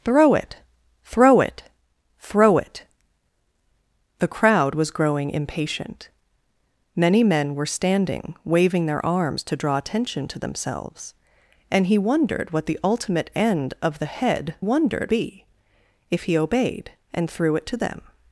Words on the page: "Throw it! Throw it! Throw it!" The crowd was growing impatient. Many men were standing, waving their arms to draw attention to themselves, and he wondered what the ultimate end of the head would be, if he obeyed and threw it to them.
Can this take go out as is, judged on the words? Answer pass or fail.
fail